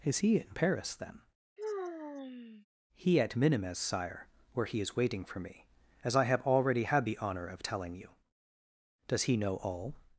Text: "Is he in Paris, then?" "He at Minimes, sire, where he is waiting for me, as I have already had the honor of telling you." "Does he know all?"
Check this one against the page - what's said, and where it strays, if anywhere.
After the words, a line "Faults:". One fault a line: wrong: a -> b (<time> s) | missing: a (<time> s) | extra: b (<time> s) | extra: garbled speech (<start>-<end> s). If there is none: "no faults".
"Is he in Paris, then?" "He at Minimes, sire, where he is waiting for me, as I have already had the honor of telling you." "Does he know all?"
Faults:
no faults